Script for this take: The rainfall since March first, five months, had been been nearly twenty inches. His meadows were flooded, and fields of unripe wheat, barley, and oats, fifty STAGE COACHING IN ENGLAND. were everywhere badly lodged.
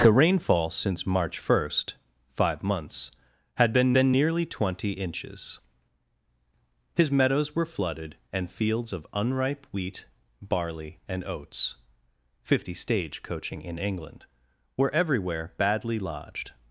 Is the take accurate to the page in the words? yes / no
yes